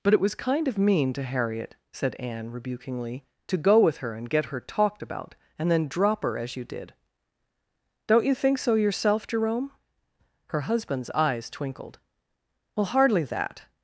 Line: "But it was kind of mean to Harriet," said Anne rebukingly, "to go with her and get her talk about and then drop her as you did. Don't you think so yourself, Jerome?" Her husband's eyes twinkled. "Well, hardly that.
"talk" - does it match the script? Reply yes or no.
no